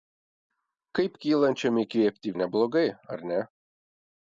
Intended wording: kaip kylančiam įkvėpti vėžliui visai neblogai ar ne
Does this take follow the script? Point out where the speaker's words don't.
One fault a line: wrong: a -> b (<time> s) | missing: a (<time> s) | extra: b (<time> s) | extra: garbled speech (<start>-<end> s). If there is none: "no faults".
missing: vėžliui visai (2.3 s)